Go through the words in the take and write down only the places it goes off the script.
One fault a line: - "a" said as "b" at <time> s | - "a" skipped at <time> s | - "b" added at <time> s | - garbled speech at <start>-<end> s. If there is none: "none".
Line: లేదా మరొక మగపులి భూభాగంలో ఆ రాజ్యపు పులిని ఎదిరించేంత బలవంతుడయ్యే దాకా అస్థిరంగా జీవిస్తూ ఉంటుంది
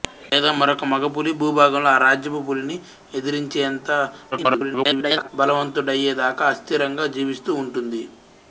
- garbled speech at 4.3-5.3 s